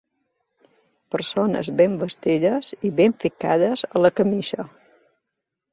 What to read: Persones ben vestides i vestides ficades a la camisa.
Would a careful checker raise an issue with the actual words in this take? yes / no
yes